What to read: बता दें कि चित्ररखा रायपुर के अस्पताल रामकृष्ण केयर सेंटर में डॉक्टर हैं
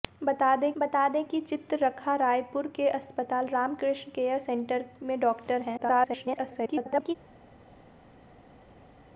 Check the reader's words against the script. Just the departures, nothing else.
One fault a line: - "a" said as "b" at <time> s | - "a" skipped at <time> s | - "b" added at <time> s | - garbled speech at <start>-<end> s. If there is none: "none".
- "बता दें" added at 0.8 s
- garbled speech at 5.8-7.2 s